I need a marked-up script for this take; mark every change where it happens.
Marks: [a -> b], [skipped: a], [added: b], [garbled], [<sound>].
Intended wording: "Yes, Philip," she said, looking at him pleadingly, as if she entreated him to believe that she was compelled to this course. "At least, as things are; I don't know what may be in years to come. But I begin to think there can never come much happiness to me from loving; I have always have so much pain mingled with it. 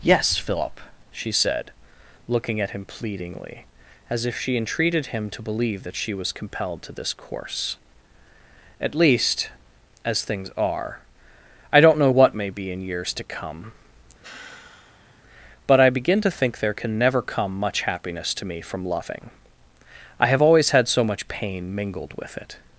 "Yes, Philip," she said, looking at him pleadingly, as if she entreated him to believe that she was compelled to this course. "At least, as things are; I don't know what may be in years to come. [sigh] But I begin to think there can never come much happiness to me from loving; I have always [have -> had] so much pain mingled with it.